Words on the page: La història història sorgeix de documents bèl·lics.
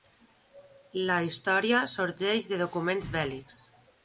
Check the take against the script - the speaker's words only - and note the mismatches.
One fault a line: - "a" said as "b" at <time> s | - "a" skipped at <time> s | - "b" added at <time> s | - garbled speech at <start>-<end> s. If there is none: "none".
- "història" skipped at 1.8 s